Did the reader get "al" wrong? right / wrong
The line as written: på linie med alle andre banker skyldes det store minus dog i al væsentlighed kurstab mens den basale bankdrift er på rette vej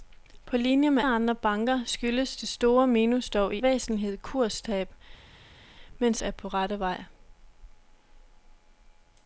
wrong